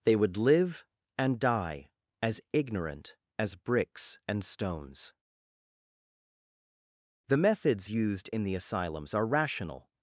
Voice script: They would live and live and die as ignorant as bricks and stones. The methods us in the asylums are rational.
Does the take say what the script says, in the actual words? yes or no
no